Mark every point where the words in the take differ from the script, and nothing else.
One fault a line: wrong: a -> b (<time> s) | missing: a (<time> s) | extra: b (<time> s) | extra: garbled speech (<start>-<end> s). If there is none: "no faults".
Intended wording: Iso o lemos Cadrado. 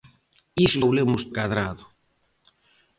no faults